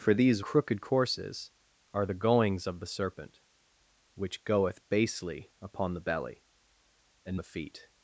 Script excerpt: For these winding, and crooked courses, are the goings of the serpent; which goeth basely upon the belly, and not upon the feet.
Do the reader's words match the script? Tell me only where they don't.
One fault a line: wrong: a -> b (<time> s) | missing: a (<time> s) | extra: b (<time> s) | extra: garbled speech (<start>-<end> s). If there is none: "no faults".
missing: winding and (0.4 s)
missing: not upon (7.4 s)